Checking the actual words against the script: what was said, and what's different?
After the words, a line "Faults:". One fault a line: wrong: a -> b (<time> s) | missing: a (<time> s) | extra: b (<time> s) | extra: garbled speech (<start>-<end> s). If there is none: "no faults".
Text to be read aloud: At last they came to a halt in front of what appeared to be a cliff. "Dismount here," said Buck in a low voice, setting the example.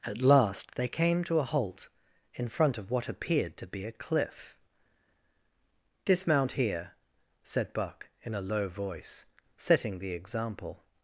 At last they came to a halt in front of what appeared to be a cliff. "Dismount here," said Buck in a low voice, setting the example.
Faults:
no faults